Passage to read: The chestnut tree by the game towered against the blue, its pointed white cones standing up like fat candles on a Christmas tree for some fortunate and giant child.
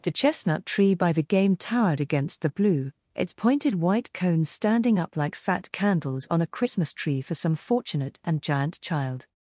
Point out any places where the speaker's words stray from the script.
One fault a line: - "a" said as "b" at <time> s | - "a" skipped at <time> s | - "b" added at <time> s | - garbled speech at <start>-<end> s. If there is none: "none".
none